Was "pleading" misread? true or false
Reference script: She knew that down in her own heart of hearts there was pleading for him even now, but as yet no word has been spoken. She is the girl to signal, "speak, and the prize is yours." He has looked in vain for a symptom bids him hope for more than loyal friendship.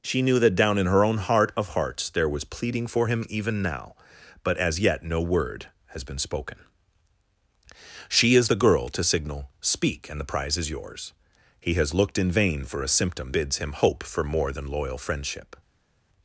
false